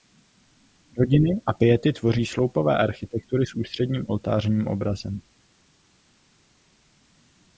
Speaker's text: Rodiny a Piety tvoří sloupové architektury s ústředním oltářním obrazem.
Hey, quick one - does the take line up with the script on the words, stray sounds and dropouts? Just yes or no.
yes